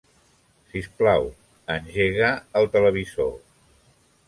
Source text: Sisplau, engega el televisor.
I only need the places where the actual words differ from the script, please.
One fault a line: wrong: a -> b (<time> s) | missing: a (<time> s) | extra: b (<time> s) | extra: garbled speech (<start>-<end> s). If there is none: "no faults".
no faults